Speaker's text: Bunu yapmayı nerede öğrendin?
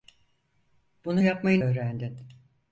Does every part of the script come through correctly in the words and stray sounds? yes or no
no